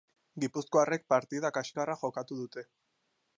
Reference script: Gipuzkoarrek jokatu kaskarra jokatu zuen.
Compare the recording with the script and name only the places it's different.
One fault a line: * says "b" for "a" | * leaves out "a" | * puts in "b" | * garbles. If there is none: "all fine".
* says "partida" for "jokatu"
* says "dute" for "zuen"